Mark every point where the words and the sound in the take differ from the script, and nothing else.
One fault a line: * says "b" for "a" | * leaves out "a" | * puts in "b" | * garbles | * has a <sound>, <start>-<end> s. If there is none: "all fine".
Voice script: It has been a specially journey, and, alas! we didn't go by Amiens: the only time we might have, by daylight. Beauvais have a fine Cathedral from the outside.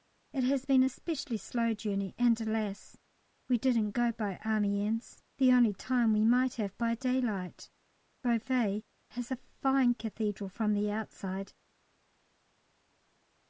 * puts in "slow"
* says "has" for "have"